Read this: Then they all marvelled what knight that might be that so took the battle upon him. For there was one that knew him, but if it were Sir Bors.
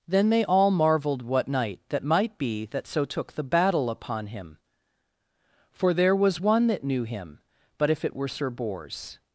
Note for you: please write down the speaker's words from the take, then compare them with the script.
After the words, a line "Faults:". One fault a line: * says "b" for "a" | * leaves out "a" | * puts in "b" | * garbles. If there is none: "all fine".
Then they all marvelled what knight that might be that so took the battle upon him. For there was one that knew him, but if it were Sir Bors.
Faults:
all fine